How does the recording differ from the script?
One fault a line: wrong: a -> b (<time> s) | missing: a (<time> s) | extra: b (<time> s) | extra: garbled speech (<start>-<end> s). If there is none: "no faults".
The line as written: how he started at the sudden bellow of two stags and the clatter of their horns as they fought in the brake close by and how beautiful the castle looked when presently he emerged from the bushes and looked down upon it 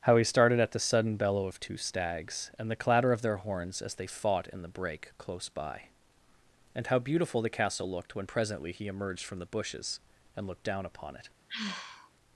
no faults